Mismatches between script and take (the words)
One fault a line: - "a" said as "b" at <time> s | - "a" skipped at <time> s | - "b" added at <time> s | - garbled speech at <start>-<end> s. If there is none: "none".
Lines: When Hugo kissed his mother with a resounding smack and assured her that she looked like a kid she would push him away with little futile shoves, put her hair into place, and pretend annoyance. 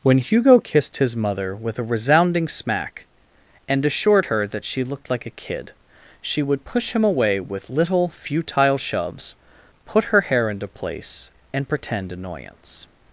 none